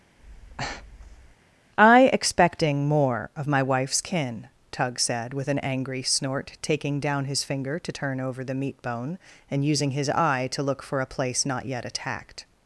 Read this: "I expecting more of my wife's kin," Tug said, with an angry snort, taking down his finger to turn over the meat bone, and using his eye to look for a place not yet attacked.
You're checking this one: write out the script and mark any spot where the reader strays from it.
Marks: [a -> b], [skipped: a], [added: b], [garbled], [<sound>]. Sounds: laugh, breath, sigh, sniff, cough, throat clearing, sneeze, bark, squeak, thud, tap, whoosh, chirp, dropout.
[breath] "I expecting more of my wife's kin," Tug said, with an angry snort, taking down his finger to turn over the meat bone, and using his eye to look for a place not yet attacked.